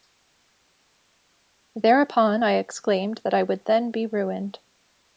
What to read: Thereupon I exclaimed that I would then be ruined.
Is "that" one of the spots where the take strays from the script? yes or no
no